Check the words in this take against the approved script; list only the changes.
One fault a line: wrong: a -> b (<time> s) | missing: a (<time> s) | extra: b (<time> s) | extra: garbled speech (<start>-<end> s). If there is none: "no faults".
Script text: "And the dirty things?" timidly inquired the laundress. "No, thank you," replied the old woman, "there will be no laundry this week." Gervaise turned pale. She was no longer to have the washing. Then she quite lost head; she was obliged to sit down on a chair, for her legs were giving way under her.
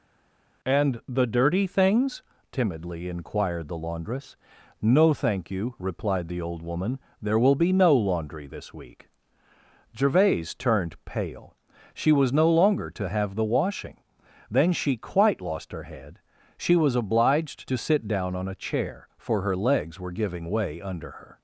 extra: her (15.7 s)